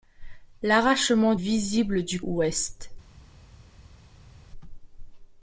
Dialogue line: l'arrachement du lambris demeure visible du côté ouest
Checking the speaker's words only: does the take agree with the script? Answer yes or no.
no